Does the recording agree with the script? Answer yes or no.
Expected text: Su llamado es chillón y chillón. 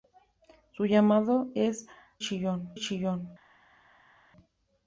yes